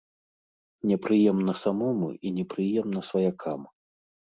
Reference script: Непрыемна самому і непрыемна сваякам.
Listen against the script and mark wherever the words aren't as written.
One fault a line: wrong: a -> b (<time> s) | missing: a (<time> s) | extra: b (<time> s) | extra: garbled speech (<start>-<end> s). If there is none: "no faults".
no faults